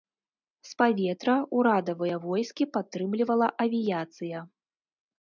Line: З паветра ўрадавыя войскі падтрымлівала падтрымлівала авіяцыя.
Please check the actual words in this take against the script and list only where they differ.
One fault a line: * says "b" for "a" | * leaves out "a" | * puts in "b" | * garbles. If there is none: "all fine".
* leaves out "падтрымлівала"